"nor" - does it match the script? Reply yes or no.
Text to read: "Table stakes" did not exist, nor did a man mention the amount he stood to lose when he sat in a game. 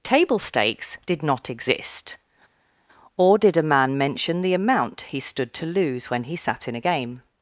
no